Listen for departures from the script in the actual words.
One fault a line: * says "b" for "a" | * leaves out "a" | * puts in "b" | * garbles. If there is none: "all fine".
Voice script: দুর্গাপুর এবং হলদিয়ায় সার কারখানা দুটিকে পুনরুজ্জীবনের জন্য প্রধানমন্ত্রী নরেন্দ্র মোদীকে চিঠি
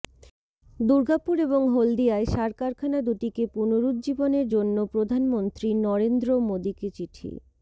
all fine